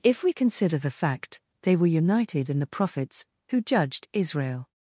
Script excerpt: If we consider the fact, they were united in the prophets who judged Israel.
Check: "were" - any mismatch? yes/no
no